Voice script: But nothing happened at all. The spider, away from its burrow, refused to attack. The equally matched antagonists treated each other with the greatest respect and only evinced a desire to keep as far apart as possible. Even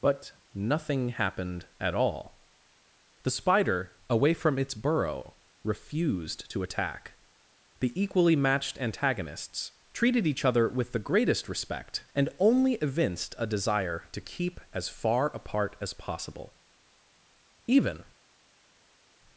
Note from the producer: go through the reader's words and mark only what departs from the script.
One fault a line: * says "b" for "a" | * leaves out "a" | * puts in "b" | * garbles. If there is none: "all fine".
all fine